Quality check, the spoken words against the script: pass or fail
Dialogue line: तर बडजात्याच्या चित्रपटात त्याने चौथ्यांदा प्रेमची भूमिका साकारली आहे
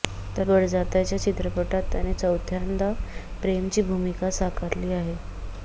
pass